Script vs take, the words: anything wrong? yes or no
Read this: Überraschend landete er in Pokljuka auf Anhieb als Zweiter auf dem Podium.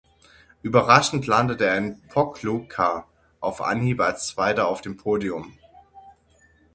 no